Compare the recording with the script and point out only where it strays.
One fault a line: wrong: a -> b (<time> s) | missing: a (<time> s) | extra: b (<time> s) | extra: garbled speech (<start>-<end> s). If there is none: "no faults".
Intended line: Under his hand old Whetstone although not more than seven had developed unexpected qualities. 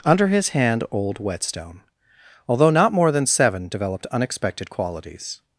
missing: had (3.7 s)